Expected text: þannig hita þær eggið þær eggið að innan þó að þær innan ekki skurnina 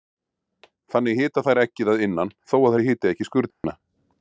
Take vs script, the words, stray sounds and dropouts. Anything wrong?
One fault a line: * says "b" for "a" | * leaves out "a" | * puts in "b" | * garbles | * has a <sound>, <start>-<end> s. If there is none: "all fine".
* leaves out "þær eggið"
* says "hiti" for "innan"
* has a dropout, 3.5-3.6 s